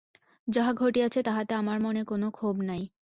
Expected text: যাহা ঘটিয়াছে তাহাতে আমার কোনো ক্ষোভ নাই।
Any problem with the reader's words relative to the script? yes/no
yes